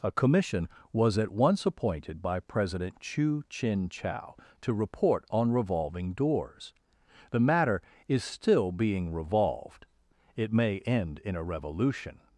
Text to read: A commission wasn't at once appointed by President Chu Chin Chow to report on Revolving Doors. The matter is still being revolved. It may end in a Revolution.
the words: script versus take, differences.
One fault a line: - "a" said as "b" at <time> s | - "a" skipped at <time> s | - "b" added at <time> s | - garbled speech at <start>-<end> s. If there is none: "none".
- "wasn't" said as "was" at 0.9 s